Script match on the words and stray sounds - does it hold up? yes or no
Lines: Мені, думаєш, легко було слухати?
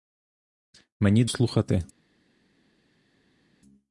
no